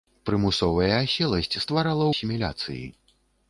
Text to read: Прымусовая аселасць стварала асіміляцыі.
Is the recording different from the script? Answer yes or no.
no